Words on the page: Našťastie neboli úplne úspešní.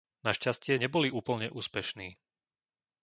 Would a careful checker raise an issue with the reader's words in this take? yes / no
no